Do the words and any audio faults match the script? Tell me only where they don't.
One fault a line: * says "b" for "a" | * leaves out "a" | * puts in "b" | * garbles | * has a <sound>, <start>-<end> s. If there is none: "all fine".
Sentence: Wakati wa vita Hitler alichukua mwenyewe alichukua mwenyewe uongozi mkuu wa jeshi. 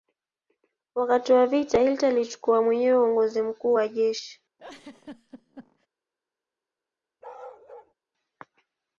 * leaves out "alichukua mwenyewe"
* has a laugh, 4.6-5.9 s
* has a bark, 7.2-7.9 s